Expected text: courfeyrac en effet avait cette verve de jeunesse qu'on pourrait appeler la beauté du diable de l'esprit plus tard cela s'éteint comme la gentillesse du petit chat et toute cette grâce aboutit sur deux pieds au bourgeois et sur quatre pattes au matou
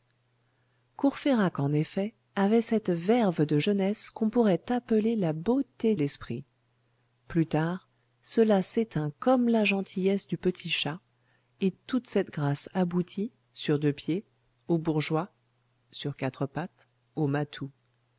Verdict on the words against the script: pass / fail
fail